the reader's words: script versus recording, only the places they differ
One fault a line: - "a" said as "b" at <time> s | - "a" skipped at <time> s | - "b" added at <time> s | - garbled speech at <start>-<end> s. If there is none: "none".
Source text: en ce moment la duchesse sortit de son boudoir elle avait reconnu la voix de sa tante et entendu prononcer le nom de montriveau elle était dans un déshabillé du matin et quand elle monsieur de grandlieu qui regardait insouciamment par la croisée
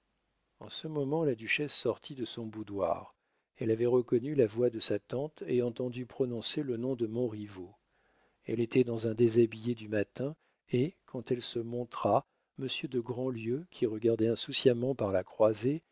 - "se montra" added at 11.4 s